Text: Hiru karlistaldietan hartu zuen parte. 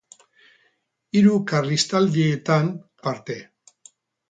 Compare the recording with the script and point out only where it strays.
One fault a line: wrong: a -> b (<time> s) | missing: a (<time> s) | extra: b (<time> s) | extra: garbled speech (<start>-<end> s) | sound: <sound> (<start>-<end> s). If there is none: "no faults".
missing: hartu zuen (2.7 s)